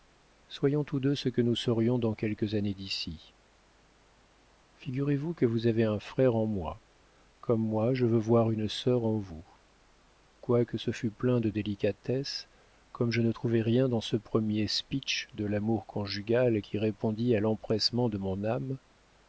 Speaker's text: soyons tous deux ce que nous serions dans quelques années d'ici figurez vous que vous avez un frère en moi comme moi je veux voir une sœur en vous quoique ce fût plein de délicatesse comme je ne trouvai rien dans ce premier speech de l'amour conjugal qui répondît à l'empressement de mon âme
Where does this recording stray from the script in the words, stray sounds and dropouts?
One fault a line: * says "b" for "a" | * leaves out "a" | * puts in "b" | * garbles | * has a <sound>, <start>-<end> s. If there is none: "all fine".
all fine